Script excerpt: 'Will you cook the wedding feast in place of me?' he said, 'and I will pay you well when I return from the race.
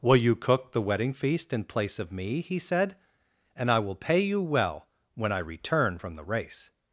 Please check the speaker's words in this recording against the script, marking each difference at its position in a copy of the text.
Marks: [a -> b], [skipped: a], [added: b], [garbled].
'Will you cook the wedding feast in place of me?' he said, 'and I will pay you well when I return from the race.